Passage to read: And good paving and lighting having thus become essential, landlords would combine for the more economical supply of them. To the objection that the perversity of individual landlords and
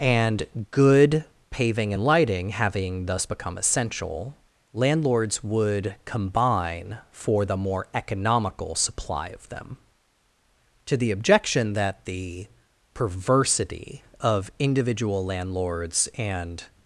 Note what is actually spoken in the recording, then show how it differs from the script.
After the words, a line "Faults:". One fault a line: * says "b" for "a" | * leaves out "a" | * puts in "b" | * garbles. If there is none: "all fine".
And good paving and lighting having thus become essential, landlords would combine for the more economical supply of them. To the objection that the perversity of individual landlords and
Faults:
all fine